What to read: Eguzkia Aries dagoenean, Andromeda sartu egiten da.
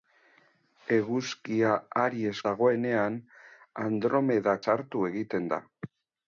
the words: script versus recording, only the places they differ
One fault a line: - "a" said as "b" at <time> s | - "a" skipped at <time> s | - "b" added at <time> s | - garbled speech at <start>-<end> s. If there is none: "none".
none